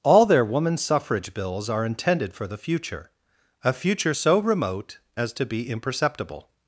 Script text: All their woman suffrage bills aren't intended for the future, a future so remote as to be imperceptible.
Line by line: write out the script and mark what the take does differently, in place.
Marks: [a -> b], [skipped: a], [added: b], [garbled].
All their woman suffrage bills [aren't -> are] intended for the future, a future so remote as to be imperceptible.